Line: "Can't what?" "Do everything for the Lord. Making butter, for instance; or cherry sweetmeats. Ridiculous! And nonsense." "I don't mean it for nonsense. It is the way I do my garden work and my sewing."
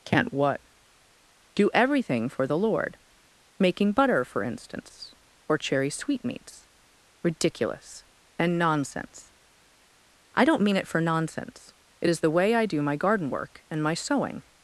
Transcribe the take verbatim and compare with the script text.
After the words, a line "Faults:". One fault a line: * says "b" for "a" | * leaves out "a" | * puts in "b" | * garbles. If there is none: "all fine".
"Can't what?" "Do everything for the Lord. Making butter, for instance; or cherry sweetmeats. Ridiculous! And nonsense." "I don't mean it for nonsense. It is the way I do my garden work and my sewing."
Faults:
all fine